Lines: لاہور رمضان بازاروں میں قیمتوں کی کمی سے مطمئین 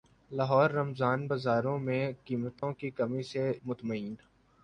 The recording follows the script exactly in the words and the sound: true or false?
false